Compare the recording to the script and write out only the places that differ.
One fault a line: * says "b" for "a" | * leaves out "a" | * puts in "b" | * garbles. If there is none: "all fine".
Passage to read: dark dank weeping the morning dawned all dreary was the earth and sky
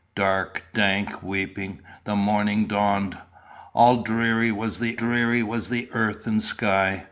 * puts in "dreary was the"